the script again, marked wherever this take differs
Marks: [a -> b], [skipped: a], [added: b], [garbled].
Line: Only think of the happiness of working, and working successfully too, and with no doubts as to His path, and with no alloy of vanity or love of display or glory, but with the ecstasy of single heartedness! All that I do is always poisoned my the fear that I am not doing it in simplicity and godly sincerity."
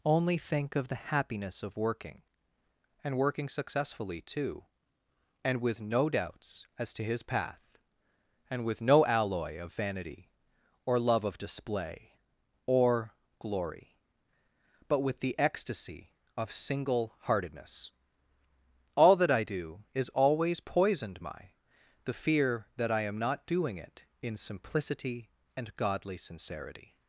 Only think of the happiness of working, and working successfully too, and with no doubts as to His path, and with no alloy of vanity or love of display or glory, but with the ecstasy of single heartedness! All that I do is always poisoned my the fear that I am not doing it in simplicity and godly sincerity."